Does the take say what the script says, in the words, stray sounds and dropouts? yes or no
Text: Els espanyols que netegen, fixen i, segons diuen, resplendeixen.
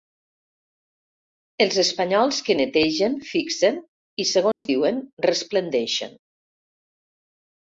no